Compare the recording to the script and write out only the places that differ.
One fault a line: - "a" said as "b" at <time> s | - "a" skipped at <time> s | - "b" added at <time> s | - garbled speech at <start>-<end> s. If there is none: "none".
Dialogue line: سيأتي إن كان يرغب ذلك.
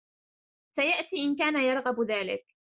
none